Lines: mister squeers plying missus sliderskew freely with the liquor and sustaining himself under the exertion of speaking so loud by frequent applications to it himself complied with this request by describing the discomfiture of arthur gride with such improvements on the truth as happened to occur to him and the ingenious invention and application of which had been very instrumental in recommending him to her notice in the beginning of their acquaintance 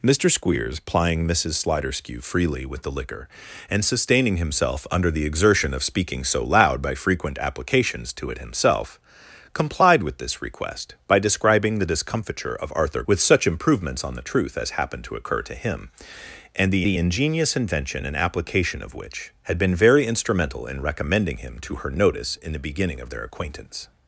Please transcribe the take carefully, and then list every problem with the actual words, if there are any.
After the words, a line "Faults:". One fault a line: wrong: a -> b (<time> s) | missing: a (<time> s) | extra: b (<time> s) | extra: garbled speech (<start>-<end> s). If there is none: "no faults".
mister squeers plying missus sliderskew freely with the liquor and sustaining himself under the exertion of speaking so loud by frequent applications to it himself complied with this request by describing the discomfiture of arthur with such improvements on the truth as happened to occur to him and the the ingenious invention and application of which had been very instrumental in recommending him to her notice in the beginning of their acquaintance
Faults:
missing: gride (13.0 s)
extra: the (16.8 s)